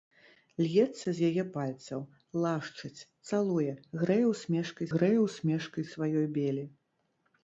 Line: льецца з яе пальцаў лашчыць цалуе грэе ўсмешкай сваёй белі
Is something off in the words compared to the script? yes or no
yes